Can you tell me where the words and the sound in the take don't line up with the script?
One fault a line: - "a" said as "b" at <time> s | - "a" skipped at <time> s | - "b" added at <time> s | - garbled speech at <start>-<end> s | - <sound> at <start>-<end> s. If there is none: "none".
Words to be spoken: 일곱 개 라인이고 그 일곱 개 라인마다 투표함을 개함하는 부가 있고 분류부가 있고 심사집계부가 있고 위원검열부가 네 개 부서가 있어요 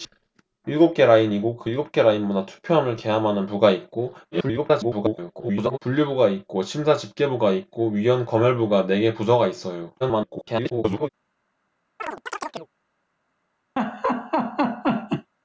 - garbled speech at 4.3-5.8 s
- garbled speech at 10.0-11.1 s
- chirp at 12.0-12.7 s
- laugh at 13.8-15.3 s